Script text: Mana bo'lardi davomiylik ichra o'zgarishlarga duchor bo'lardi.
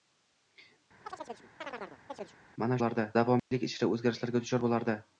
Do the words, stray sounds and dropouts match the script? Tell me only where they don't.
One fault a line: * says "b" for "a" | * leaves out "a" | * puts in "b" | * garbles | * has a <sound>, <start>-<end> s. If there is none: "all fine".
* has a chirp, 1.1-2.4 s
* has a dropout, 3.4-3.5 s